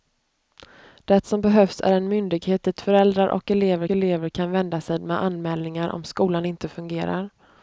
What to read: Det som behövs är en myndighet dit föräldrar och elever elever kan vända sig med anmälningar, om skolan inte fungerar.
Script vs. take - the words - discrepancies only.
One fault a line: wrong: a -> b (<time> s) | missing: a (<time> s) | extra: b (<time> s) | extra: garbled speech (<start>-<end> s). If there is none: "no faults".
no faults